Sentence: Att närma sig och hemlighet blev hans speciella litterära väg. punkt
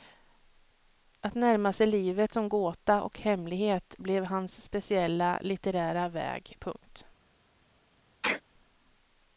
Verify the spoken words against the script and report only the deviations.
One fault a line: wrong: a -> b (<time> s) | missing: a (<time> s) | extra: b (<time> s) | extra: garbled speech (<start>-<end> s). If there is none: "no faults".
extra: livet som gåta (1.9 s)